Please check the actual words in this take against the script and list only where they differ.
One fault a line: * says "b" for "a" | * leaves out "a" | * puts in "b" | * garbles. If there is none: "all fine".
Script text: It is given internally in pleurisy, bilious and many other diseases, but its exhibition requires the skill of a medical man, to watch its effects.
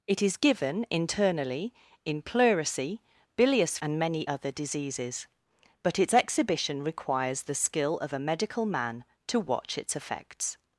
all fine